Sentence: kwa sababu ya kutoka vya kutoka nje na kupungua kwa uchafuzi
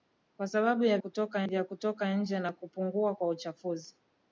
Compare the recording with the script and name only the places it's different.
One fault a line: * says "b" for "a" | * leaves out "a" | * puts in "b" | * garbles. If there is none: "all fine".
all fine